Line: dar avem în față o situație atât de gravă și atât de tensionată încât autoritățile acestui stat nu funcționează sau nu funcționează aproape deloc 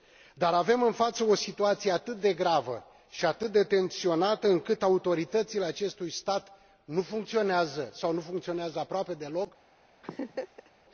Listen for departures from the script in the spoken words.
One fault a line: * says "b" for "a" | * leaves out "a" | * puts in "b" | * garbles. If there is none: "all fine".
all fine